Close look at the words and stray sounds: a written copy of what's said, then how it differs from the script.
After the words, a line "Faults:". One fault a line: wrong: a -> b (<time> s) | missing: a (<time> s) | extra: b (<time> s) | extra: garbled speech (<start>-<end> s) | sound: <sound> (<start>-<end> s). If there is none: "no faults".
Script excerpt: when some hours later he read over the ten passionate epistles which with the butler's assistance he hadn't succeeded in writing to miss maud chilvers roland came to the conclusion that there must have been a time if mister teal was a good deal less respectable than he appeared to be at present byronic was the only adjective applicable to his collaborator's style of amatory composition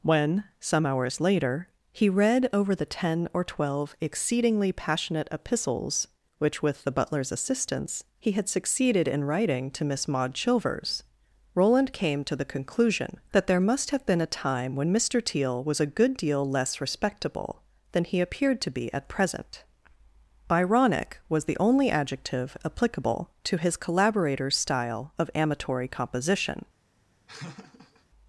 when some hours later he read over the ten or twelve exceedingly passionate epistles which with the butler's assistance he had succeeded in writing to miss maud chilvers roland came to the conclusion that there must have been a time when mister teal was a good deal less respectable than he appeared to be at present byronic was the only adjective applicable to his collaborator's style of amatory composition
Faults:
extra: or twelve exceedingly (3.3 s)
wrong: hadn't -> had (8.3 s)
wrong: if -> when (14.8 s)
sound: laugh (27.3-28.1 s)